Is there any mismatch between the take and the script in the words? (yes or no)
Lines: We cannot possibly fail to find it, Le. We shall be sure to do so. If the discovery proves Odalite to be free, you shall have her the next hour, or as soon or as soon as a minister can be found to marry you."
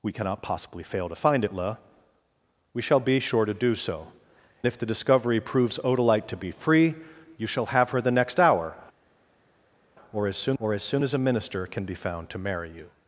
no